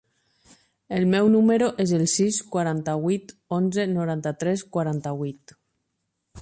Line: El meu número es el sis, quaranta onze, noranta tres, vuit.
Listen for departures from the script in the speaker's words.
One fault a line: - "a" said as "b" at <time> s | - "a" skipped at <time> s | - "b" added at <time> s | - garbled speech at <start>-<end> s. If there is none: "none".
- "vuit" added at 3.1 s
- "quaranta" added at 4.8 s